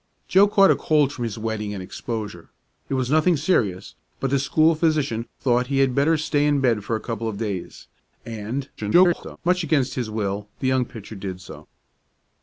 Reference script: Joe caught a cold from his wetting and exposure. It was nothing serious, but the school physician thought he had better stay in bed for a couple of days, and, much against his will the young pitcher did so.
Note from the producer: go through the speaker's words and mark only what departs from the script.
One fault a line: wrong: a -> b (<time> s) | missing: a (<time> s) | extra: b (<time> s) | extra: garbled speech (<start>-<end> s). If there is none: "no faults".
extra: garbled speech (8.8-9.4 s)